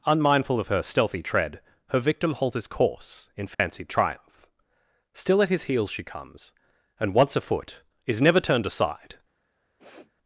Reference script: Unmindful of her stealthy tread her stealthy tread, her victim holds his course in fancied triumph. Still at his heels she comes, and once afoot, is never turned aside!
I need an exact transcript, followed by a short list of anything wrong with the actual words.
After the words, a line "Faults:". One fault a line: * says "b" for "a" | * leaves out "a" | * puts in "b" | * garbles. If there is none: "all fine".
Unmindful of her stealthy tread, her victim holds his course in fancied triumph. Still at his heels she comes, and once afoot, is never turned aside!
Faults:
* leaves out "stealthy tread her"